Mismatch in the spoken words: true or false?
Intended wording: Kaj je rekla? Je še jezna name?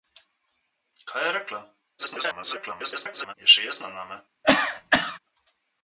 true